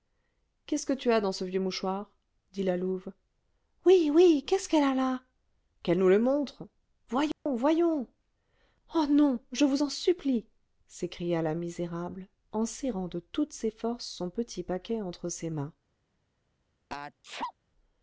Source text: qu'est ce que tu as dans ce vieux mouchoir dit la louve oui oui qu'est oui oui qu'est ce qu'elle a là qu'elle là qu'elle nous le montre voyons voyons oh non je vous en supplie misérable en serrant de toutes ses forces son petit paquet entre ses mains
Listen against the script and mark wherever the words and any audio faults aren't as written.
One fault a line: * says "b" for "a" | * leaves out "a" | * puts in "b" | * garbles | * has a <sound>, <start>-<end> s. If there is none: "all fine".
* leaves out "oui oui qu'est"
* leaves out "là qu'elle"
* has a dropout, 7.3-7.5 s
* puts in "s'écria la"
* has a sneeze, 16.9-17.5 s